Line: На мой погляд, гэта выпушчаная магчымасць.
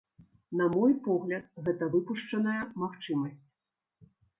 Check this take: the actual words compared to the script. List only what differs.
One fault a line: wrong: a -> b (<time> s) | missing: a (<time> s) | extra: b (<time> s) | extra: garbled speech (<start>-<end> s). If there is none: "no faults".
no faults